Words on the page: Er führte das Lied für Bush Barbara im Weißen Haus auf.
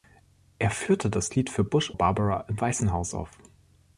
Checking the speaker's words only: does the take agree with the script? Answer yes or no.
yes